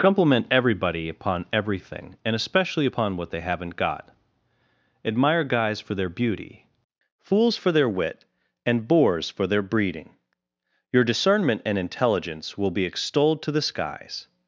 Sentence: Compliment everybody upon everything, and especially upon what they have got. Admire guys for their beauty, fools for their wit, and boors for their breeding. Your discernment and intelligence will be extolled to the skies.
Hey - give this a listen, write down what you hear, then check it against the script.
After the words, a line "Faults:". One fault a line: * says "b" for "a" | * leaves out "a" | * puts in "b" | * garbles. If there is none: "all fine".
Compliment everybody upon everything, and especially upon what they haven't got. Admire guys for their beauty, fools for their wit, and boors for their breeding. Your discernment and intelligence will be extolled to the skies.
Faults:
* says "haven't" for "have"